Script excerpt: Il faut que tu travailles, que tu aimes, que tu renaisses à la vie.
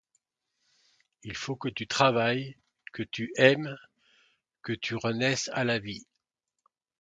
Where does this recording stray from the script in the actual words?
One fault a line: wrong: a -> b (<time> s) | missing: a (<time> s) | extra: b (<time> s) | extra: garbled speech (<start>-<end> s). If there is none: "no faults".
no faults